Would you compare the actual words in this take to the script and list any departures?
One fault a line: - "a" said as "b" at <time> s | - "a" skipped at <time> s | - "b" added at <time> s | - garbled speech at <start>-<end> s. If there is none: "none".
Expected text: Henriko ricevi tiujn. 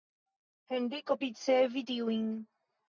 none